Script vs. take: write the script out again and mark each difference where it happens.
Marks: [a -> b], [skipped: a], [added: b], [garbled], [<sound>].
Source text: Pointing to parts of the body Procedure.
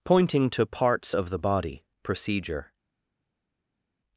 Pointing to parts of the body Procedure.